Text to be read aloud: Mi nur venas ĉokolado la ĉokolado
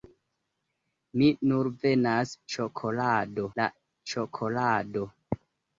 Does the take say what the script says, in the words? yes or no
yes